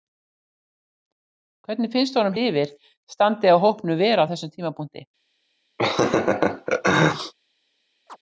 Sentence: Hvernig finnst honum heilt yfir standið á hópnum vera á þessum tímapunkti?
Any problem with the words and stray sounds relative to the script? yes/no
yes